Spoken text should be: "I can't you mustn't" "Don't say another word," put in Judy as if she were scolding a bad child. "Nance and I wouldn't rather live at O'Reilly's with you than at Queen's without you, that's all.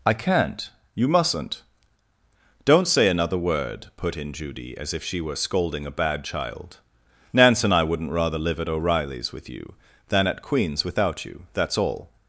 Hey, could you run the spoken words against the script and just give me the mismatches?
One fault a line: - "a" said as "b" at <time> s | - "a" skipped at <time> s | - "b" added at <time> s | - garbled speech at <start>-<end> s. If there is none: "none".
none